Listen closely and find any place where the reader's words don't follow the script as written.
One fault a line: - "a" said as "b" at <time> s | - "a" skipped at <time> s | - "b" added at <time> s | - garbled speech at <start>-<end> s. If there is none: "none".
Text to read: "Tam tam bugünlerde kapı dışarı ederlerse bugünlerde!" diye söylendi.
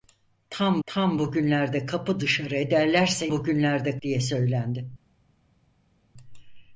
none